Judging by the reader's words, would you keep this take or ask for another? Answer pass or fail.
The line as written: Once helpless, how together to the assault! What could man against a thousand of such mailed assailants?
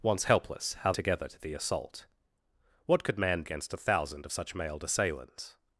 pass